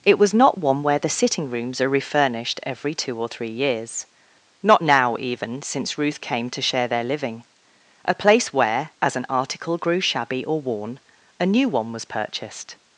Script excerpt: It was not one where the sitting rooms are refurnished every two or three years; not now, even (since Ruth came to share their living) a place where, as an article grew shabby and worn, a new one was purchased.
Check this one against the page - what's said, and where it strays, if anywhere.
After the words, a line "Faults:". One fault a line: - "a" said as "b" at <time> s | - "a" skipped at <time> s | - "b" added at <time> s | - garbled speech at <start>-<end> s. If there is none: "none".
It was not one where the sitting rooms are refurnished every two or three years; not now, even (since Ruth came to share their living) a place where, as an article grew shabby or worn, a new one was purchased.
Faults:
- "and" said as "or" at 10.4 s